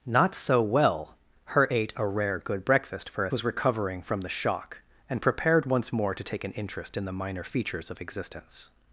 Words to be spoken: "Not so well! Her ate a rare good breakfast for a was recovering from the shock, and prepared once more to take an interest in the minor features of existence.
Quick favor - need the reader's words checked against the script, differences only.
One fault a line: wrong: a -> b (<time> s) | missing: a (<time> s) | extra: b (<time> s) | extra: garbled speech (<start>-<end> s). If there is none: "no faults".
no faults